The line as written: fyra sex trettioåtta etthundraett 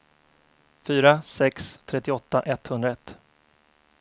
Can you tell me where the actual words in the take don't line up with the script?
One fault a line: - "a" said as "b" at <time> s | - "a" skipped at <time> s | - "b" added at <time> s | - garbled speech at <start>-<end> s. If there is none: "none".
none